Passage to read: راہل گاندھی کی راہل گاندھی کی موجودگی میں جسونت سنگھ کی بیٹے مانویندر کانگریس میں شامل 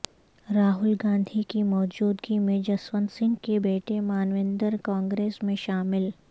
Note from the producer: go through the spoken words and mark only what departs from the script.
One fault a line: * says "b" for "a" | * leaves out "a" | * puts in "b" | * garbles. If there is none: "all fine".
* leaves out "راہل گاندھی کی"
* says "کے" for "کی"